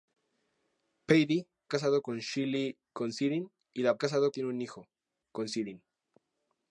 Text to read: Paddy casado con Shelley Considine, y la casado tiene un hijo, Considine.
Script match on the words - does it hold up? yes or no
yes